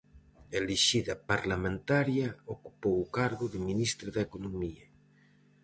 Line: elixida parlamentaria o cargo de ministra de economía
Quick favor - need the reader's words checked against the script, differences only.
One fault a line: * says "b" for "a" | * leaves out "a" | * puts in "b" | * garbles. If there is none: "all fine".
* puts in "ocupou"